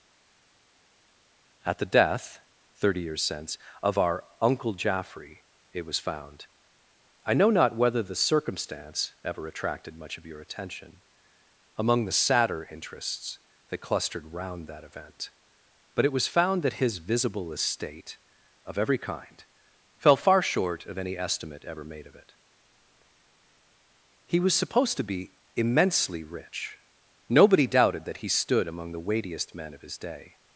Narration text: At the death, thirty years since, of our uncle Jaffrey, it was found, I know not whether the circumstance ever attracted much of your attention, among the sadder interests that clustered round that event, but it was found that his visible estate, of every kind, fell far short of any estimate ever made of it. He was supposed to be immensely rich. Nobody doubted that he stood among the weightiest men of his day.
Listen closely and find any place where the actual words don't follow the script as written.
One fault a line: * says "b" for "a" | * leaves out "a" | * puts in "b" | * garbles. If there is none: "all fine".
all fine